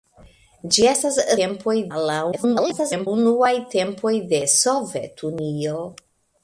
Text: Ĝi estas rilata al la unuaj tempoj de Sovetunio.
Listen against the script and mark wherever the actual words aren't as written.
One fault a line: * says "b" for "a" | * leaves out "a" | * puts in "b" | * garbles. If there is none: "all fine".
* says "tempoj" for "rilata"
* garbles